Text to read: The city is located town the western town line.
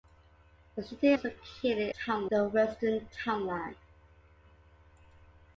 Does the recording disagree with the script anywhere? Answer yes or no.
no